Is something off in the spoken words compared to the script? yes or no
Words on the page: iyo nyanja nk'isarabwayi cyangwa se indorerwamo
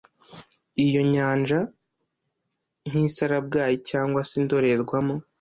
no